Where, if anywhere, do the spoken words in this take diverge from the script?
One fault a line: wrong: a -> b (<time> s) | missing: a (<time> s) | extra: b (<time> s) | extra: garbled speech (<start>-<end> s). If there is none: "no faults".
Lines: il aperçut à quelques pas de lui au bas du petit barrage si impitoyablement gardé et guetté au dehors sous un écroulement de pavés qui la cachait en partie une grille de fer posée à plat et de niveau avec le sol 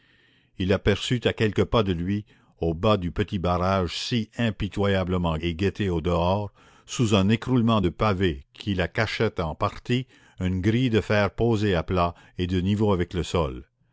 missing: gardé (5.4 s)